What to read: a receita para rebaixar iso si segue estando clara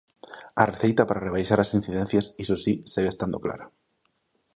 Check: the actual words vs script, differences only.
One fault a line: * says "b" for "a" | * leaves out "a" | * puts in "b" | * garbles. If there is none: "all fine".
* puts in "as incidencias"